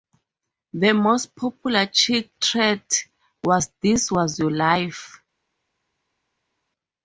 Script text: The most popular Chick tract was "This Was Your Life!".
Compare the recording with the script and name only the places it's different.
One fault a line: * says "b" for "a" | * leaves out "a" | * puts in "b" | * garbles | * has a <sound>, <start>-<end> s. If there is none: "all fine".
all fine